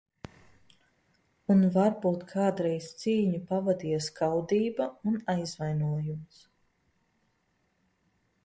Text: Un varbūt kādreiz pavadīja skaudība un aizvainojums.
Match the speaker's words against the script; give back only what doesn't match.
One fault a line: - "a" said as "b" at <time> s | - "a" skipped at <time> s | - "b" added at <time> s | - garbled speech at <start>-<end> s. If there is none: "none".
- "cīņu" added at 3.0 s